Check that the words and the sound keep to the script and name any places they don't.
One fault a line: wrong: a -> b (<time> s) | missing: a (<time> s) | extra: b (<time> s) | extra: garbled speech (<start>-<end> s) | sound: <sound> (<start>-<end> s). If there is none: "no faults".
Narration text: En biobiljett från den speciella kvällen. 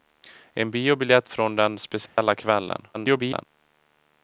sound: dropout (2.1-2.2 s)
extra: garbled speech (2.9-3.5 s)